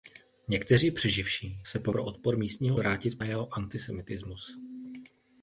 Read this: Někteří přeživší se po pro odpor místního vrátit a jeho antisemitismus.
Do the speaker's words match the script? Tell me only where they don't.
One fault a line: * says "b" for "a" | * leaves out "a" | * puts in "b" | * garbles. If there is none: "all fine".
all fine